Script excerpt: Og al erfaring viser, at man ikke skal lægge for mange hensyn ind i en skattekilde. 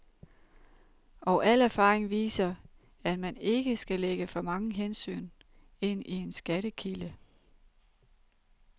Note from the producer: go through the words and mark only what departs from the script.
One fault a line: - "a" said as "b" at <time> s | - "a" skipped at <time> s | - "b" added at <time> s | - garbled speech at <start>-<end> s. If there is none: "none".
none